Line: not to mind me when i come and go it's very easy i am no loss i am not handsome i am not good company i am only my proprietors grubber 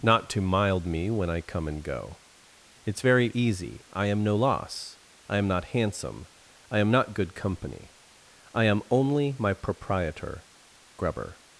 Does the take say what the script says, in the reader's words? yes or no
no